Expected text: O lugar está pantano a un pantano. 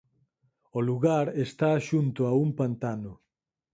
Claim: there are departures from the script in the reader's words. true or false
true